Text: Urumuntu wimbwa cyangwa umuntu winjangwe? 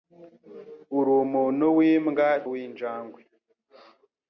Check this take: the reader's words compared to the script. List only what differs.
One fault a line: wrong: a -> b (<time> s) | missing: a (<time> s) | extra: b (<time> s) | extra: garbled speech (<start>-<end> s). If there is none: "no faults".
missing: cyangwa umuntu (2.3 s)